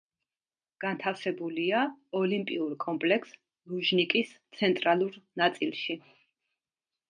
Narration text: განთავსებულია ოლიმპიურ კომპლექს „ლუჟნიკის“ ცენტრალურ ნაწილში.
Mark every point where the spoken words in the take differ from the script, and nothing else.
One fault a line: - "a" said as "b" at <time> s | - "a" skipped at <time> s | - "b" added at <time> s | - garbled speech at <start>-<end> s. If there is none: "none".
none